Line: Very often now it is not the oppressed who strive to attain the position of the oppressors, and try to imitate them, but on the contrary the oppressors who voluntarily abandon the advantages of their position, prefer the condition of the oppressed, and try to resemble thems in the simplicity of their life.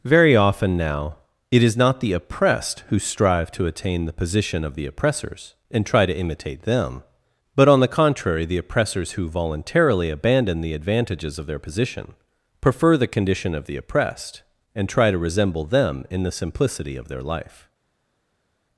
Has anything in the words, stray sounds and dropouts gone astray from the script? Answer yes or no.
yes